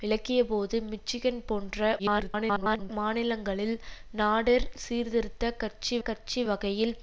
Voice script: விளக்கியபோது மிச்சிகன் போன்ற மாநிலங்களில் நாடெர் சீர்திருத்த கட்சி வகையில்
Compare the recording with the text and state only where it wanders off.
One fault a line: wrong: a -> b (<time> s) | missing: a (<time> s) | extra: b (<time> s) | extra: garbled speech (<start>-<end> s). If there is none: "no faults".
extra: garbled speech (2.0-2.9 s)
extra: கட்சி (6.0 s)